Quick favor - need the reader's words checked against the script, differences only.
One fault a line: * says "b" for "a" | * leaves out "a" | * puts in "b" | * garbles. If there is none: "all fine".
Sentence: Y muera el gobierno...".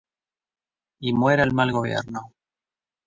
* puts in "mal"